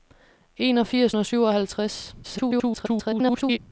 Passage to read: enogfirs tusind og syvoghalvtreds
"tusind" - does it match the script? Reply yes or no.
no